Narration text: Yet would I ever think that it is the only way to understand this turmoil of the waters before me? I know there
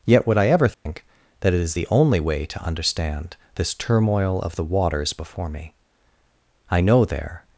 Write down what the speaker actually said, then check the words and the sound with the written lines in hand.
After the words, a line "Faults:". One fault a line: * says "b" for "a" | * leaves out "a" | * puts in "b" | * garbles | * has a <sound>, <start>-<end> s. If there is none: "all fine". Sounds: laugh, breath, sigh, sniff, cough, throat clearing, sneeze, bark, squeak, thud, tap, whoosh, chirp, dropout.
Yet would I ever think that it is the only way to understand this turmoil of the waters before me? I know there
Faults:
* has a dropout, 0.7-0.9 s